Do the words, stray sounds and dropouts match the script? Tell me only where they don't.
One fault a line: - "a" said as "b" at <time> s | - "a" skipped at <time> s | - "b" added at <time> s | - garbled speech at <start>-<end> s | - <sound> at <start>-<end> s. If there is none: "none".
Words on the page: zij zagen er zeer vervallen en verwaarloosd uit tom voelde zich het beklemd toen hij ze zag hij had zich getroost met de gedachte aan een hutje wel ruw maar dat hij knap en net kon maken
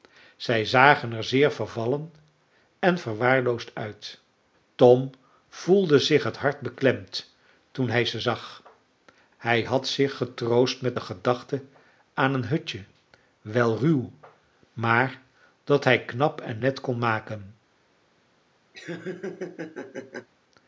- "hart" added at 6.4 s
- laugh at 18.7-20.3 s